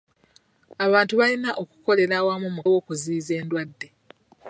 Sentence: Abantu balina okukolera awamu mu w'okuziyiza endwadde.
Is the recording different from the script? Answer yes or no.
no